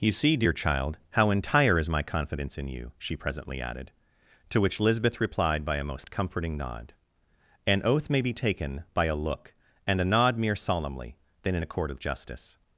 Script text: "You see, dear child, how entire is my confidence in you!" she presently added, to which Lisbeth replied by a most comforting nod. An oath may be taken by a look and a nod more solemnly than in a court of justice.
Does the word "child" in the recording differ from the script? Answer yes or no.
no